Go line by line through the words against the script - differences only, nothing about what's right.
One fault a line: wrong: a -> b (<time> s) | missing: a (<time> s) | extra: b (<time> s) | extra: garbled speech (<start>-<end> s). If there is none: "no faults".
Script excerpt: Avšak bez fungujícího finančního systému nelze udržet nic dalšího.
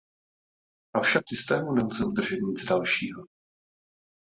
missing: bez fungujícího finančního (1.2 s)